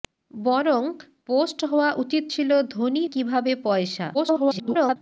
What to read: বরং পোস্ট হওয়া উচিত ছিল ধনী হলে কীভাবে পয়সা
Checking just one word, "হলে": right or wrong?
wrong